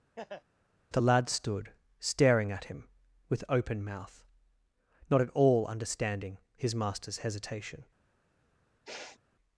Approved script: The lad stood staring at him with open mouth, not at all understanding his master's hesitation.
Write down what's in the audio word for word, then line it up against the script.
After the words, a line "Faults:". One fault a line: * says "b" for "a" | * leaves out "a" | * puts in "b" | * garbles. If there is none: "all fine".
The lad stood staring at him with open mouth, not at all understanding his master's hesitation.
Faults:
all fine